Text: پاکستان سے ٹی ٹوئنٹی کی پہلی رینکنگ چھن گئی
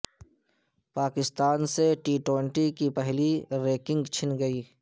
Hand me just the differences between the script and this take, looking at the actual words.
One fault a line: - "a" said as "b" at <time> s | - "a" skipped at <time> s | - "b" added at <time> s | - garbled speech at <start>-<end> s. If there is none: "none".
none